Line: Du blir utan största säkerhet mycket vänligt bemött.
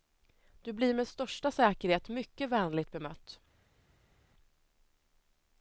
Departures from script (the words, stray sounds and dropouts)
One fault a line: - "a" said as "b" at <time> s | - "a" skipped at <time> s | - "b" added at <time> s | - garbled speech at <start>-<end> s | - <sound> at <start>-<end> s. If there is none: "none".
- "utan" said as "med" at 0.9 s